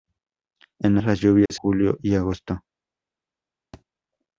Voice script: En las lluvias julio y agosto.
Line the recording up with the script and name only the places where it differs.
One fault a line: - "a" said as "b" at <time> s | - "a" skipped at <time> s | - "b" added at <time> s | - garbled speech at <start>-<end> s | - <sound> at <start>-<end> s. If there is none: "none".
- dropout at 1.5-1.5 s
- thud at 3.7-3.8 s